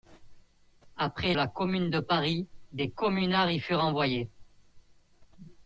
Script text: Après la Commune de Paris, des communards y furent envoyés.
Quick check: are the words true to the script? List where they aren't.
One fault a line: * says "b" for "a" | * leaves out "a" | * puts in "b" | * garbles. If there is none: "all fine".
all fine